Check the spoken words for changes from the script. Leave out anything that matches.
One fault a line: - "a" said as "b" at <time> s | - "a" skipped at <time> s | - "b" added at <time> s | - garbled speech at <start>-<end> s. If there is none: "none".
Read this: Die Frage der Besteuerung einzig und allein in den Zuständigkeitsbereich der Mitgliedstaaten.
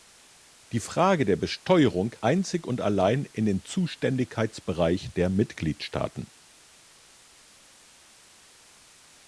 none